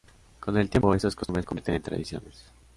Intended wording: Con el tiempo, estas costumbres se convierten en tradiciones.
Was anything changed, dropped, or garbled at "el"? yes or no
no